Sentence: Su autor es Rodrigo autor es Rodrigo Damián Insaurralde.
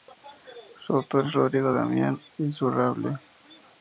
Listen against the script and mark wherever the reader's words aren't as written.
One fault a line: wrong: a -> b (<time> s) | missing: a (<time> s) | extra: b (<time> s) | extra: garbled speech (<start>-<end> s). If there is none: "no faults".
missing: autor es Rodrigo (1.7 s)